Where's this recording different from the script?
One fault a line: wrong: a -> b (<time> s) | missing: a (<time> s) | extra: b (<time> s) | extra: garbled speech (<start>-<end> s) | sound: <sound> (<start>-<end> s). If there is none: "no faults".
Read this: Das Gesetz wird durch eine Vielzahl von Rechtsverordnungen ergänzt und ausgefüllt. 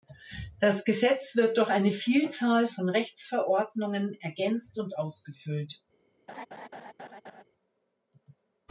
sound: laugh (6.3-7.4 s)